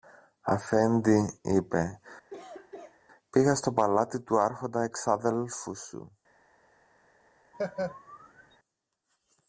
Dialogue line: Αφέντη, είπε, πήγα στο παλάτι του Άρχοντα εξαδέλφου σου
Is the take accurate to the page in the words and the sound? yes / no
no